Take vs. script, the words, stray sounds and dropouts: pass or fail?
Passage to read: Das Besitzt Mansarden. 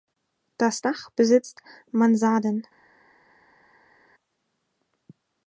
fail